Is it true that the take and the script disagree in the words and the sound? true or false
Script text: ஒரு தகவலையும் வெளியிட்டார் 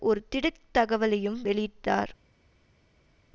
true